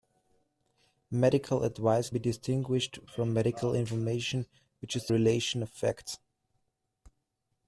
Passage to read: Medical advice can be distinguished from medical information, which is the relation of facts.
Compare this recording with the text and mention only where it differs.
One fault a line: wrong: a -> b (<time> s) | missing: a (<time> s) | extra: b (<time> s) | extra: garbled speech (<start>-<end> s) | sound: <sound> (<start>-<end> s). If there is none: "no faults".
missing: can (2.1 s)
missing: the (5.1 s)